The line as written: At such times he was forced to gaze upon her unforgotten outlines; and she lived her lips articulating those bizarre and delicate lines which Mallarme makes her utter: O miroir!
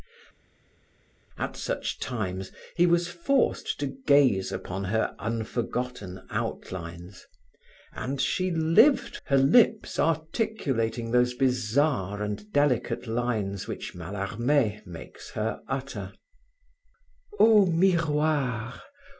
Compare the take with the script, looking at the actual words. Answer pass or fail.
pass